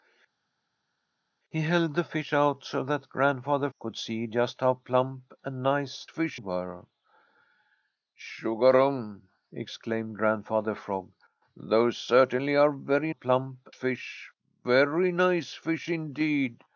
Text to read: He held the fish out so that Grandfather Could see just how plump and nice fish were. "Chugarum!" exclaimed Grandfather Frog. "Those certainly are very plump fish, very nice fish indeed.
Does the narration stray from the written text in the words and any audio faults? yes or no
no